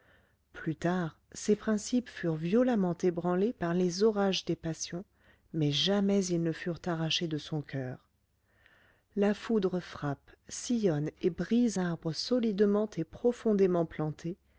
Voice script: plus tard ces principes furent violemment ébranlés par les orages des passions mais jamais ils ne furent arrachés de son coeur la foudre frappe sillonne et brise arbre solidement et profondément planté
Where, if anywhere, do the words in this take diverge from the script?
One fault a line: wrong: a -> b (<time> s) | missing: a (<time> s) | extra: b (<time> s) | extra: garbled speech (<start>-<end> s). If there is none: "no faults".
no faults